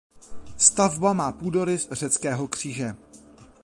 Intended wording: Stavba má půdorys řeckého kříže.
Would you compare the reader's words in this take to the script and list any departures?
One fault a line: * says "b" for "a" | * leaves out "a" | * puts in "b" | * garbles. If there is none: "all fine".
all fine